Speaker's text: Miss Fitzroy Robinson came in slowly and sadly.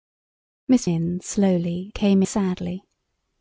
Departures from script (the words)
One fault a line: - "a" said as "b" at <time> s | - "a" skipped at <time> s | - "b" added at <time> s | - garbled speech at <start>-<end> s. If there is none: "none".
- "Fitzroy Robinson came" skipped at 0.9 s
- "and" said as "came" at 1.9 s